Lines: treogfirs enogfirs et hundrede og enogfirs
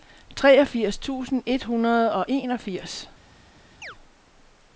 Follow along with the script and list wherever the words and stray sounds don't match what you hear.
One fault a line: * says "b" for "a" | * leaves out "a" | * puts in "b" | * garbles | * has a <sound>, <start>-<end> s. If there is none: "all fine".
* says "tusind" for "enogfirs"
* has a chirp, 3.8-4.0 s